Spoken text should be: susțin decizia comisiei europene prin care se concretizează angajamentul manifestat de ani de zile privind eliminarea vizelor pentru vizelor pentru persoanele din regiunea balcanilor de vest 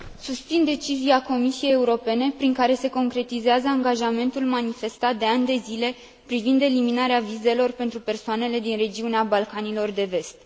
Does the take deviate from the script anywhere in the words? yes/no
yes